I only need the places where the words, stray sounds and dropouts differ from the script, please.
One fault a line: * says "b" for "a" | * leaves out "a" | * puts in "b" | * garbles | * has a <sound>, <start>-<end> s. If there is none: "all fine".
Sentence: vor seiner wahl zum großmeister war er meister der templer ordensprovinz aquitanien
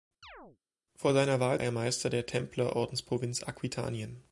* has a chirp, 0.2-0.6 s
* leaves out "zum großmeister war"